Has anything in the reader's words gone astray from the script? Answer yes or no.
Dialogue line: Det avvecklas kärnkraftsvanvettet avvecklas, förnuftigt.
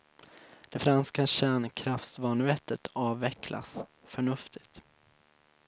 yes